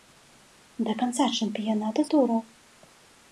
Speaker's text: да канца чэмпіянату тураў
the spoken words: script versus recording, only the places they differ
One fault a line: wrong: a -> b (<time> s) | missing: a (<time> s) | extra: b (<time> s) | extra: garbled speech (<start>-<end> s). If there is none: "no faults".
no faults